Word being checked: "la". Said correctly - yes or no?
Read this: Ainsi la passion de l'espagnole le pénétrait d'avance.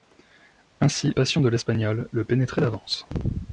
no